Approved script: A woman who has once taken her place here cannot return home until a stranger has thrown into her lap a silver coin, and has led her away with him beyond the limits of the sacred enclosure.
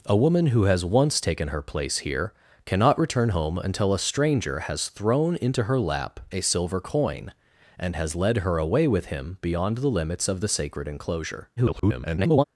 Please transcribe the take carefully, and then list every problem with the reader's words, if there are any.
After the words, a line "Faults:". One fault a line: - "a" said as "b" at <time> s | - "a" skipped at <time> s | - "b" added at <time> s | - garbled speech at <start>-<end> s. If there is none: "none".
A woman who has once taken her place here cannot return home until a stranger has thrown into her lap a silver coin, and has led her away with him beyond the limits of the sacred enclosure. [garbled]
Faults:
- garbled speech at 11.6-12.4 s